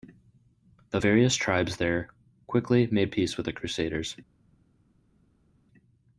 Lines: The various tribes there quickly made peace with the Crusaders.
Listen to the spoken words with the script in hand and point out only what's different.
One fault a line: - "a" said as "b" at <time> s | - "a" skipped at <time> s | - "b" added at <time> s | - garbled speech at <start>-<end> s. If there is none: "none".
none